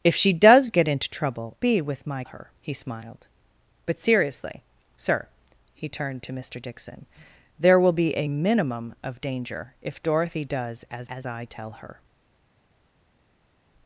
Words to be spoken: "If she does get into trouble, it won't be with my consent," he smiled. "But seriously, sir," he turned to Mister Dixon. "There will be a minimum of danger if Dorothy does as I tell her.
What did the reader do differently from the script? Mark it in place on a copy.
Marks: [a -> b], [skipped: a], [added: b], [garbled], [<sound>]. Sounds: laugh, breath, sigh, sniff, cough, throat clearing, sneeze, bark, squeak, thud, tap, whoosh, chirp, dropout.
"If she does get into trouble, [skipped: it won't] be with my [consent," -> her] he smiled. "But seriously, sir," he turned to Mister Dixon. "There will be a minimum of danger if Dorothy does as [added: as] I tell her.